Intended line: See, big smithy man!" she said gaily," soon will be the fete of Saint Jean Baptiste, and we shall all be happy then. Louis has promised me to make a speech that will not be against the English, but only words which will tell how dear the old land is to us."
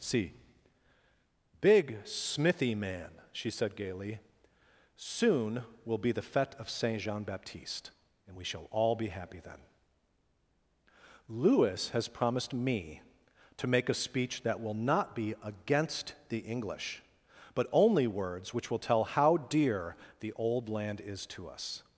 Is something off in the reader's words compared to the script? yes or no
no